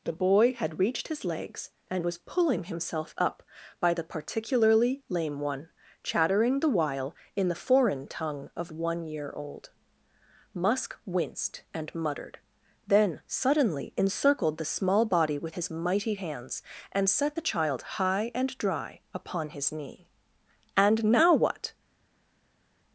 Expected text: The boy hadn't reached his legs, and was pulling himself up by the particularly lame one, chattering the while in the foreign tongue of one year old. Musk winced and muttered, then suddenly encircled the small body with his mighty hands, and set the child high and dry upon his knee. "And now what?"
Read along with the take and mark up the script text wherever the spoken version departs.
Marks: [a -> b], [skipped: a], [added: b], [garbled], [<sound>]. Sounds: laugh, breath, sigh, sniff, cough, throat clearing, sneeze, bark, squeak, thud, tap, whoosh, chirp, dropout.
The boy [hadn't -> had] reached his legs, and was pulling himself up by the particularly lame one, chattering the while in the foreign tongue of one year old. Musk winced and muttered, then suddenly encircled the small body with his mighty hands, and set the child high and dry upon his knee. "And now what?"